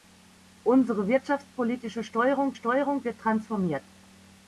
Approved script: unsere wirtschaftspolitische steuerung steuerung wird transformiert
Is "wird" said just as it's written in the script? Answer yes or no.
yes